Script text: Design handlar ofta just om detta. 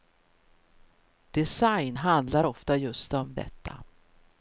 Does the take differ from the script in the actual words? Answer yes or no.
no